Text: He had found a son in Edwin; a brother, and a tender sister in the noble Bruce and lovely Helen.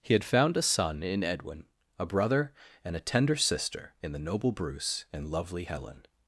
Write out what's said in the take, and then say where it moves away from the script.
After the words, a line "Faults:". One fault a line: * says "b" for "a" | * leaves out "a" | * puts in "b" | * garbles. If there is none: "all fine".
He had found a son in Edwin; a brother, and a tender sister in the noble Bruce and lovely Helen.
Faults:
all fine